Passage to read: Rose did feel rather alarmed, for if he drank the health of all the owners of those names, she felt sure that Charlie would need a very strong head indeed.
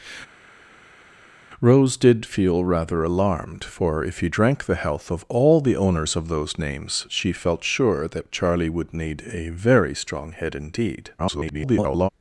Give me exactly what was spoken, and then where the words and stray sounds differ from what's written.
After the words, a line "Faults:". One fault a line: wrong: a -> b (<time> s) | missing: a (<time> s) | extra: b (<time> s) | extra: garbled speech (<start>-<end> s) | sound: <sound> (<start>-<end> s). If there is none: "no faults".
Rose did feel rather alarmed, for if he drank the health of all the owners of those names, she felt sure that Charlie would need a very strong head indeed. [garbled]
Faults:
extra: garbled speech (11.2-12.1 s)